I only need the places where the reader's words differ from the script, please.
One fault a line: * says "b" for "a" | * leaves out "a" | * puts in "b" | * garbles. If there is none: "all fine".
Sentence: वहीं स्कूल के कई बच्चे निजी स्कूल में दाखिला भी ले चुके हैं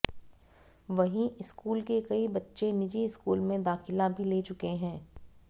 all fine